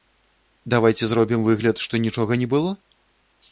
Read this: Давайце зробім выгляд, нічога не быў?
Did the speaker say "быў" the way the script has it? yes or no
no